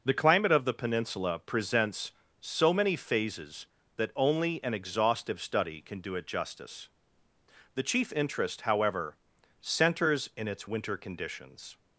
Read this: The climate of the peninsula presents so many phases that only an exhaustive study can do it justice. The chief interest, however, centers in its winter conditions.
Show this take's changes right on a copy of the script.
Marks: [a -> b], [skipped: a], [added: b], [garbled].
The climate of the peninsula presents so many phases that only an exhaustive study can do it justice. The chief interest, however, centers in its winter conditions.